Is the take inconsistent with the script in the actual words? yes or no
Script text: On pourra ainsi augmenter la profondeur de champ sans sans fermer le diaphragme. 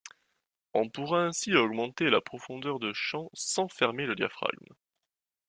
yes